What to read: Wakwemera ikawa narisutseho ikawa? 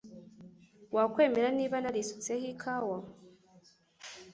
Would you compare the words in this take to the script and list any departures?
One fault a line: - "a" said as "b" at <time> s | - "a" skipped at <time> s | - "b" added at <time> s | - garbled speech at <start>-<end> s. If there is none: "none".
- "ikawa" said as "niba" at 1.6 s